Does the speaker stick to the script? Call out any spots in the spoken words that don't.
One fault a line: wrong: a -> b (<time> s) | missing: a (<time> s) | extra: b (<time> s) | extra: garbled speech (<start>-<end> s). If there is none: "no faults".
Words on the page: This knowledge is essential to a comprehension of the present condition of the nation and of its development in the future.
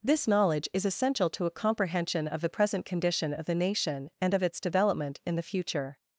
no faults